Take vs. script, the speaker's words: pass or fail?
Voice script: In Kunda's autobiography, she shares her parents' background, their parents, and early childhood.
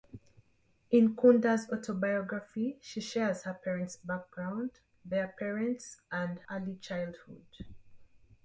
pass